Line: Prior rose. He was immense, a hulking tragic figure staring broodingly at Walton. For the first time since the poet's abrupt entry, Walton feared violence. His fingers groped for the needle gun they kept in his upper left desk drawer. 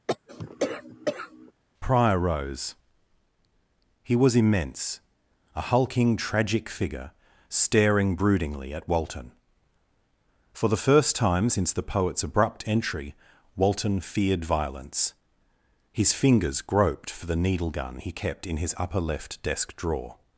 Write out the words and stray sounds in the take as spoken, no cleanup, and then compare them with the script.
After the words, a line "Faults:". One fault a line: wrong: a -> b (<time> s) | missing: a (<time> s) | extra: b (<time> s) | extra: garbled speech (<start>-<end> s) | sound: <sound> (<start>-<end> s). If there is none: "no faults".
Prior rose. He was immense, a hulking tragic figure staring broodingly at Walton. For the first time since the poet's abrupt entry, Walton feared violence. His fingers groped for the needle gun he kept in his upper left desk drawer.
Faults:
sound: cough (0.1-1.5 s)
wrong: they -> he (17.9 s)